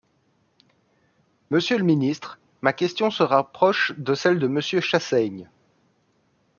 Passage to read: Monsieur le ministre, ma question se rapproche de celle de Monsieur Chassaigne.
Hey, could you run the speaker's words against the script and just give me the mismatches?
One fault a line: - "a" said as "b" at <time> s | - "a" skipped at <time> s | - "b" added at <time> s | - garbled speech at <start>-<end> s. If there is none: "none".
none